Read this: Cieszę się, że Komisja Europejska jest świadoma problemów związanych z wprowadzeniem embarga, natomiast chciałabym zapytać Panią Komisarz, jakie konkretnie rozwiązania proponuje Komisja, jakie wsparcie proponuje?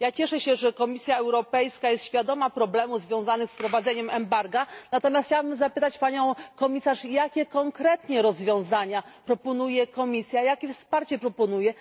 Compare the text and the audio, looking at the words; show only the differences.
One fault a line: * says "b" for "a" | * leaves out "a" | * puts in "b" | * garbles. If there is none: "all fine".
all fine